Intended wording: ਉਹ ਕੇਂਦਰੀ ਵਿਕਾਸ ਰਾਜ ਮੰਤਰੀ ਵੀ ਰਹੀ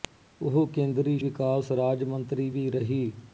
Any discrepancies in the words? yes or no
no